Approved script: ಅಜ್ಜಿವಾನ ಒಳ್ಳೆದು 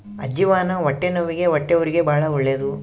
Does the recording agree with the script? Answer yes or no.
no